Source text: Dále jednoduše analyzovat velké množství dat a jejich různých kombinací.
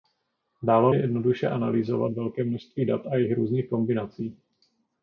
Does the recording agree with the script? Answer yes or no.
yes